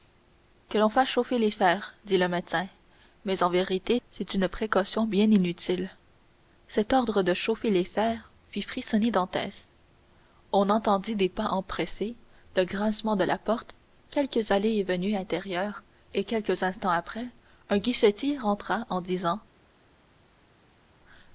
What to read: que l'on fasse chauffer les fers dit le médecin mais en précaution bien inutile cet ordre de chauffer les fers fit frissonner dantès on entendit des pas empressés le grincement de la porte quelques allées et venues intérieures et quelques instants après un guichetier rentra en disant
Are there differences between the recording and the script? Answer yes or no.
yes